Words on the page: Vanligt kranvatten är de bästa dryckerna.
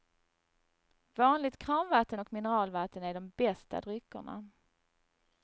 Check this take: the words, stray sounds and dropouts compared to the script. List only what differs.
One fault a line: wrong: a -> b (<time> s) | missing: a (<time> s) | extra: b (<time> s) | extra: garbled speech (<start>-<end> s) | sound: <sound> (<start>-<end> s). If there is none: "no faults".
extra: och mineralvatten (2.2 s)